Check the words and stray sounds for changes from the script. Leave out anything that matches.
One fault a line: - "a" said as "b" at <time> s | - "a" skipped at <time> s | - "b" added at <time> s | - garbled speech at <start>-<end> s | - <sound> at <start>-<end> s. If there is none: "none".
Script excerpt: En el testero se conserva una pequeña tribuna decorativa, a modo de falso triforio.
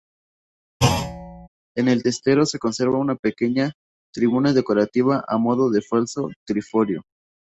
- thud at 0.8-1.5 s